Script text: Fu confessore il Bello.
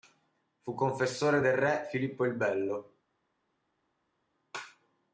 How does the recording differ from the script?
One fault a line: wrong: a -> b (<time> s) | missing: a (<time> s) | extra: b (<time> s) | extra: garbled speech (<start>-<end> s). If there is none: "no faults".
extra: del re Filippo (1.4 s)